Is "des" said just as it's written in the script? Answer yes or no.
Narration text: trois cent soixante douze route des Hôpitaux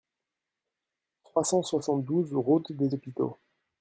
yes